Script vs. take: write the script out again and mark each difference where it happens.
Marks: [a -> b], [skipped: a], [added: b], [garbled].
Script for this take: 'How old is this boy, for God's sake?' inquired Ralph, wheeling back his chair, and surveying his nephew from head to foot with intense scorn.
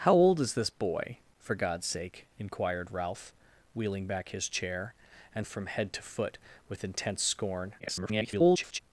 'How old is this boy, for God's sake?' inquired Ralph, wheeling back his chair, and [skipped: surveying his nephew] from head to foot with intense scorn. [garbled]